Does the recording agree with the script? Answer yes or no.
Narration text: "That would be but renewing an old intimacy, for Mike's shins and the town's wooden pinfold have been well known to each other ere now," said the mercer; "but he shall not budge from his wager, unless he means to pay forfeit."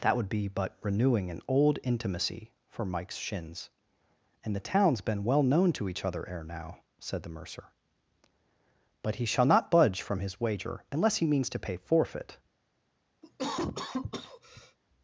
no